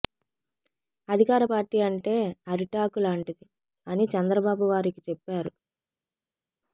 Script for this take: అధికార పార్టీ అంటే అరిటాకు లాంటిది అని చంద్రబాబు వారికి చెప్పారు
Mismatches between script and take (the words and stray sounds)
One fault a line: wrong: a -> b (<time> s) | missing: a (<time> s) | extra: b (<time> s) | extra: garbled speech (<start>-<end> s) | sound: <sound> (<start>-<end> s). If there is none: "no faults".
no faults